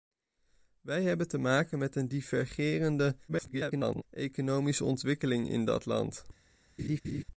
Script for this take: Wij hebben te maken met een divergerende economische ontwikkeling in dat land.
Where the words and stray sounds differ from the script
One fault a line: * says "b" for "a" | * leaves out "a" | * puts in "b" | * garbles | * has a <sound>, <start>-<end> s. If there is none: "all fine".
* garbles
* has a laugh, 6.8-7.2 s